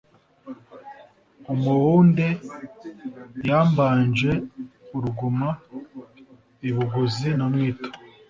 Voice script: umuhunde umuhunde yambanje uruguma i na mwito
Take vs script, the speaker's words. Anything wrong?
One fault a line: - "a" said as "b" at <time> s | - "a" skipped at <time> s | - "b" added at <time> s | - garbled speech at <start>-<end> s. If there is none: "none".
- "umuhunde" skipped at 2.3 s
- "buguzi" added at 6.8 s